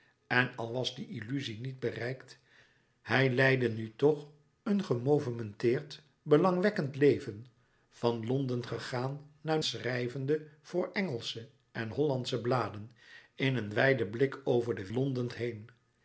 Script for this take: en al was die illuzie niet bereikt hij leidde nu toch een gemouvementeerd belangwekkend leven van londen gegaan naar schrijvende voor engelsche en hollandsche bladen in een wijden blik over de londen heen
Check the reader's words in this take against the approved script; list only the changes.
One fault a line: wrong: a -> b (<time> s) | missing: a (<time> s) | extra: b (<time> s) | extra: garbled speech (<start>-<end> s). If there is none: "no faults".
no faults